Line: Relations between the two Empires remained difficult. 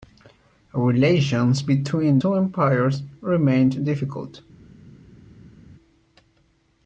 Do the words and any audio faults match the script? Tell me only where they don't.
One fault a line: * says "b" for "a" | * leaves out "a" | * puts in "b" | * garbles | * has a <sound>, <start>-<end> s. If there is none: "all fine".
* leaves out "the"